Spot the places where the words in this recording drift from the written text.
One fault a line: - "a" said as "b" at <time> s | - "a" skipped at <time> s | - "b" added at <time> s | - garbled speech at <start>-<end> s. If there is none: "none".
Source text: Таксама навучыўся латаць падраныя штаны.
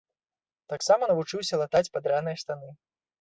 none